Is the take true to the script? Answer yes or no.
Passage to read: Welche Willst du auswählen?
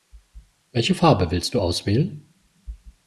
no